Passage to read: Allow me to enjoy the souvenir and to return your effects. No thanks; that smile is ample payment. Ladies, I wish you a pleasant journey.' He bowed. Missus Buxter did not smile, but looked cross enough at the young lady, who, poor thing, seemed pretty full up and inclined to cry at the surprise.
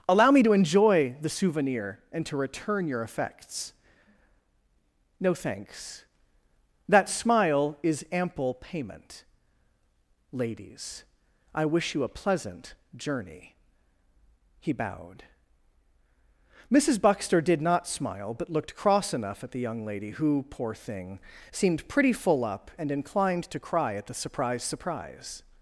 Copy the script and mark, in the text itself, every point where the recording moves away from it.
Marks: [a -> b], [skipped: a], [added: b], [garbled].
Allow me to enjoy the souvenir and to return your effects. No thanks; that smile is ample payment. Ladies, I wish you a pleasant journey.' He bowed. Missus Buxter did not smile, but looked cross enough at the young lady, who, poor thing, seemed pretty full up and inclined to cry at the surprise. [added: surprise]